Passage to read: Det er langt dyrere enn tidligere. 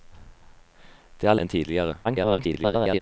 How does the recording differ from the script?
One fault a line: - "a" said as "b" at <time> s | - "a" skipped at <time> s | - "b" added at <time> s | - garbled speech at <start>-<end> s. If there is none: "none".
- "langt dyrere" skipped at 1.4 s
- garbled speech at 2.0-3.0 s